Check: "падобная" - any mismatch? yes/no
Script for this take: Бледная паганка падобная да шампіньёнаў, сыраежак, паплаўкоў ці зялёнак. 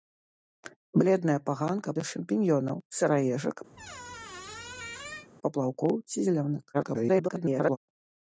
yes